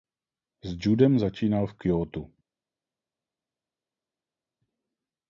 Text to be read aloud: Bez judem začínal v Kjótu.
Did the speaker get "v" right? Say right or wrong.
right